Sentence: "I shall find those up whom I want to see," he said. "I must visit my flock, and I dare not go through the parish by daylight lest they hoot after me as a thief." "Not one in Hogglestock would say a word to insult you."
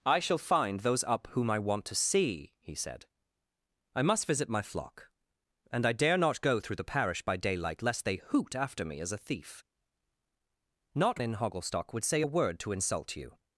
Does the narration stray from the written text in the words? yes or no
yes